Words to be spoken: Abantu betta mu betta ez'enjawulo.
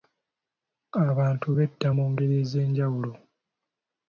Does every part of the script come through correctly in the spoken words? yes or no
no